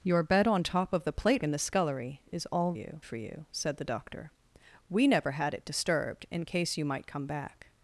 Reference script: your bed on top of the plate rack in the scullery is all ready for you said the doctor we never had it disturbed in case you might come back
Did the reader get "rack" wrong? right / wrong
wrong